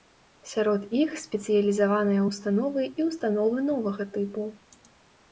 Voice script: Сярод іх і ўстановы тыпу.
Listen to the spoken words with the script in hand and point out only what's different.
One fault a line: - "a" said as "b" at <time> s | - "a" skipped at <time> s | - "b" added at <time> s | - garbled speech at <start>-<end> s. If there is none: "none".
- "спецыялізаваныя ўстановы" added at 1.2 s
- "новага" added at 3.7 s